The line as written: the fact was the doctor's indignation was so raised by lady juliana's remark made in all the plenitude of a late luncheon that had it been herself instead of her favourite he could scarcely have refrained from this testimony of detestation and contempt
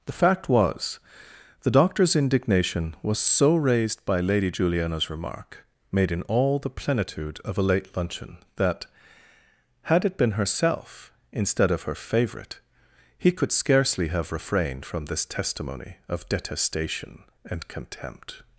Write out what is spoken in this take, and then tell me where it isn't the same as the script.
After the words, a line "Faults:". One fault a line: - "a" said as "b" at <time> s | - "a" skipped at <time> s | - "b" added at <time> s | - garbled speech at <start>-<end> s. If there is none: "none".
the fact was the doctor's indignation was so raised by lady juliana's remark made in all the plenitude of a late luncheon that had it been herself instead of her favourite he could scarcely have refrained from this testimony of detestation and contempt
Faults:
none